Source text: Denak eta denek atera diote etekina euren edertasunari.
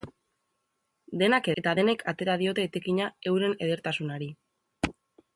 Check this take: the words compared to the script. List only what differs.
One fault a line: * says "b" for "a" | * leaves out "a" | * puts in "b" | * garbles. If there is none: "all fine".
all fine